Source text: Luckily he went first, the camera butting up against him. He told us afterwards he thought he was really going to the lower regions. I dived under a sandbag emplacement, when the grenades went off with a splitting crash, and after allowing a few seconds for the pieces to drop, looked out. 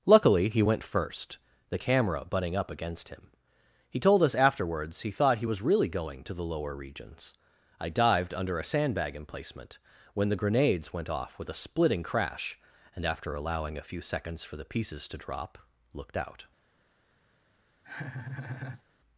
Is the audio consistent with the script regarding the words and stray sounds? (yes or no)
no